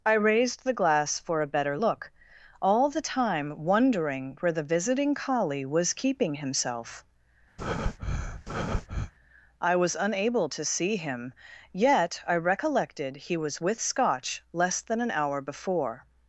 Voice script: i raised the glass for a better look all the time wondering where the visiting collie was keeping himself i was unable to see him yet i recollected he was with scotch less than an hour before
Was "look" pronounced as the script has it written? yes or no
yes